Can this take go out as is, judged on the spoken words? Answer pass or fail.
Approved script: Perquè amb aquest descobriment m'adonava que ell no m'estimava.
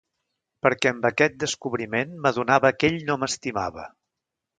pass